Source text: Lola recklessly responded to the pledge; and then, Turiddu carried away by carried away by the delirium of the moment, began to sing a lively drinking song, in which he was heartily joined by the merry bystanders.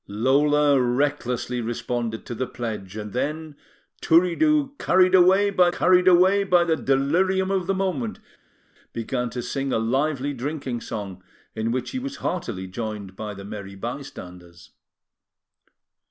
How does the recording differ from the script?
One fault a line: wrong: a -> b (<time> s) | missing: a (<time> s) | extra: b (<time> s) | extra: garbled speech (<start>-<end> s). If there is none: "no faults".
no faults